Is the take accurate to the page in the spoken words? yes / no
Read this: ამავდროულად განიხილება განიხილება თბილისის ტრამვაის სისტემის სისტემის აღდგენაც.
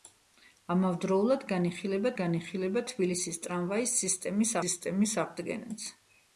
yes